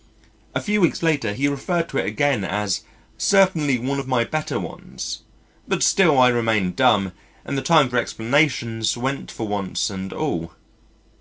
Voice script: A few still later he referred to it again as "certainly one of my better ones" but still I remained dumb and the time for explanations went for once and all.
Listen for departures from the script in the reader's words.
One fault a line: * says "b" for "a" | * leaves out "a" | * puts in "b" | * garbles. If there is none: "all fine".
* says "weeks" for "still"